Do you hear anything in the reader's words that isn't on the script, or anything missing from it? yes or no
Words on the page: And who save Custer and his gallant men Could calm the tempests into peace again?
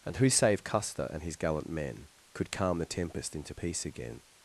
yes